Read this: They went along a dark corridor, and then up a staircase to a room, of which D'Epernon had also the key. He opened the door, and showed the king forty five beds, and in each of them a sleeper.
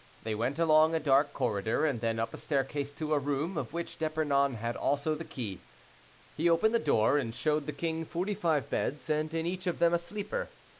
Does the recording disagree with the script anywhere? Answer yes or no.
no